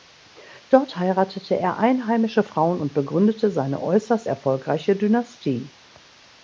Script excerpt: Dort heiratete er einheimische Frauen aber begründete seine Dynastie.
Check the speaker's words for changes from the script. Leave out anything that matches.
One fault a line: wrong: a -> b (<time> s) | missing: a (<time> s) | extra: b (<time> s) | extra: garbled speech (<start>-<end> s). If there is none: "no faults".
wrong: aber -> und (2.8 s)
extra: äußerst erfolgreiche (3.8 s)